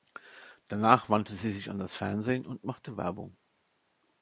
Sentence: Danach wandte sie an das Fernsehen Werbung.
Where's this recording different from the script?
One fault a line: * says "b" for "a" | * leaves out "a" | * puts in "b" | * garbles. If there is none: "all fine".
* puts in "sich"
* puts in "und machte"